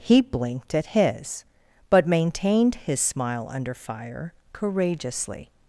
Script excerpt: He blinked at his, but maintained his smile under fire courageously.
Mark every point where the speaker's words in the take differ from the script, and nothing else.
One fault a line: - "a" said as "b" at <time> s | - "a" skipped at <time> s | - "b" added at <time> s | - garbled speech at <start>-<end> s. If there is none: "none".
none